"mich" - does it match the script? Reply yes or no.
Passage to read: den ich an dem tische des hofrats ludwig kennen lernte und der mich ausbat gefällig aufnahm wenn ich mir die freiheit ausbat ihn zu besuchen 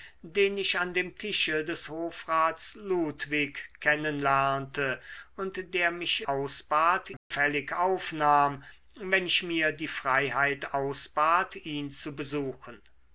yes